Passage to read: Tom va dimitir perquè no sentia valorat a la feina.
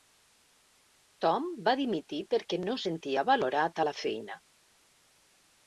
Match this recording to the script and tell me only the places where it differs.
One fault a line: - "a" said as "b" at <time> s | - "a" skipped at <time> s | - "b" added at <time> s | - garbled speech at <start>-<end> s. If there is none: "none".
none